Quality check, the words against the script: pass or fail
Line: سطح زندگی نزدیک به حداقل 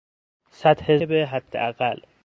fail